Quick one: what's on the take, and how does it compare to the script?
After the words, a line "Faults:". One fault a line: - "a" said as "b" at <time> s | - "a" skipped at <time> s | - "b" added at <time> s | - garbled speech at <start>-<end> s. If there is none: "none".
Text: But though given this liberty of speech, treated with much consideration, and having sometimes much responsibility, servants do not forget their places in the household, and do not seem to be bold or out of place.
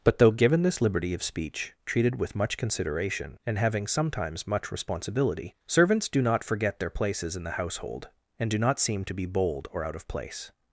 But though given this liberty of speech, treated with much consideration, and having sometimes much responsibility, servants do not forget their places in the household, and do not seem to be bold or out of place.
Faults:
none